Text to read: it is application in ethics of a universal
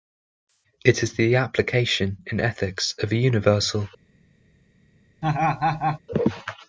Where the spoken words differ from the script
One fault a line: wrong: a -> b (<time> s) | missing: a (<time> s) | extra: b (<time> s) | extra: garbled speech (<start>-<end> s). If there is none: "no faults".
extra: the (1.1 s)